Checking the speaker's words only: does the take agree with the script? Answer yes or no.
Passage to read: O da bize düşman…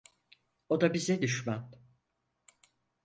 yes